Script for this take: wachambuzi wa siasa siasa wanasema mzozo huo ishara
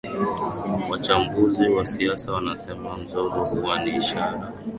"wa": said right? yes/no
yes